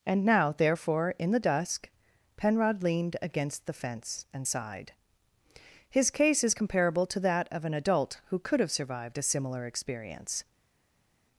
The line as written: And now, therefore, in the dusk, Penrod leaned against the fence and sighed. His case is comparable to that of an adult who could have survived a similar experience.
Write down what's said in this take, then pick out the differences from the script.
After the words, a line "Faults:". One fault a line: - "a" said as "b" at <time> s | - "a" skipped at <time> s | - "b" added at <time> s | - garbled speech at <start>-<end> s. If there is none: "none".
And now, therefore, in the dusk, Penrod leaned against the fence and sighed. His case is comparable to that of an adult who could have survived a similar experience.
Faults:
none